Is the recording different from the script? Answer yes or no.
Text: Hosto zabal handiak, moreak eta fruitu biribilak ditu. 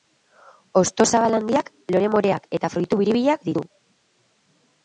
yes